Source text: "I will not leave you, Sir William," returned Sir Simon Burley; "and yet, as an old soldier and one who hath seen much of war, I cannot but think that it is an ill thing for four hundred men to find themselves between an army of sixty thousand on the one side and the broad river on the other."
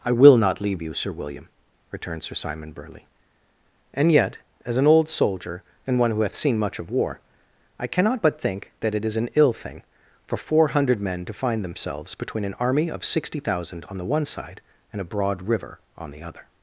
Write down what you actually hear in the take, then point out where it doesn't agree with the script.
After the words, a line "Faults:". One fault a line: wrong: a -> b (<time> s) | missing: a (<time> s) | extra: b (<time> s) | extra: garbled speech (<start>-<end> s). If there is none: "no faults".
"I will not leave you, Sir William," returned Sir Simon Burley; "and yet, as an old soldier and one who hath seen much of war, I cannot but think that it is an ill thing for four hundred men to find themselves between an army of sixty thousand on the one side and a broad river on the other."
Faults:
wrong: the -> a (15.0 s)